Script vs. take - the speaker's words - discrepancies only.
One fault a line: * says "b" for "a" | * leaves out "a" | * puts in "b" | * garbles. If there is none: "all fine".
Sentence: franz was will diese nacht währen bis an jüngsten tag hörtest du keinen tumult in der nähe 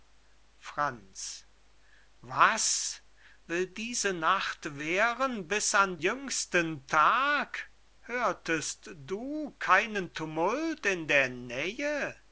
all fine